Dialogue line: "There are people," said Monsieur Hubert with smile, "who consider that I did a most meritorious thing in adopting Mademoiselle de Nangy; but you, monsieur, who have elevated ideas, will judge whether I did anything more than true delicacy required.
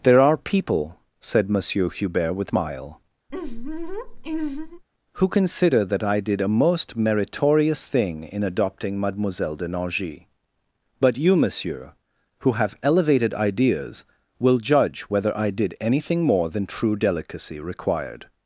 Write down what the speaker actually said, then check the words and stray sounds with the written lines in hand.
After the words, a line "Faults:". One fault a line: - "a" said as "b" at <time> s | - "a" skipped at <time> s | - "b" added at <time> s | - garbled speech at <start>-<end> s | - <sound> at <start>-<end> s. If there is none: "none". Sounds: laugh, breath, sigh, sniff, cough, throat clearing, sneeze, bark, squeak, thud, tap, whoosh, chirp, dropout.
"There are people," said Monsieur Hubert with smile, "who consider that I did a most meritorious thing in adopting Mademoiselle de Nangy; but you, monsieur, who have elevated ideas, will judge whether I did anything more than true delicacy required.
Faults:
- laugh at 3.3-4.8 s